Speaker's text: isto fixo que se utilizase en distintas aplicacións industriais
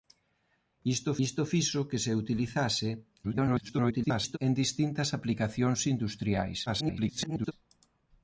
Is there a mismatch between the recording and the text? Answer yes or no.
yes